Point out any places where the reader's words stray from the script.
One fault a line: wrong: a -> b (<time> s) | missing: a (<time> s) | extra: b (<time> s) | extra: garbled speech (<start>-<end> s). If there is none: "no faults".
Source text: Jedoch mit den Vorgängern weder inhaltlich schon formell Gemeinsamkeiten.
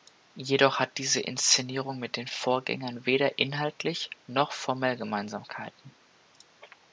extra: hat diese Inszenierung (0.8 s)
wrong: schon -> noch (4.2 s)